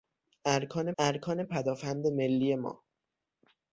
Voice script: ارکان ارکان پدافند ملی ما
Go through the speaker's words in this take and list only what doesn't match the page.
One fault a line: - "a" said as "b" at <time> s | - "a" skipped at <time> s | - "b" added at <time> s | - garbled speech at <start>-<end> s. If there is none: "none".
none